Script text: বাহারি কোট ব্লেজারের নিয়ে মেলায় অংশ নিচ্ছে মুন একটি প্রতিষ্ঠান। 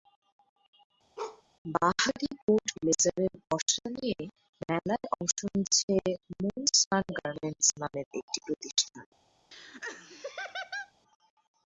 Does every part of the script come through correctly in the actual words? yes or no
no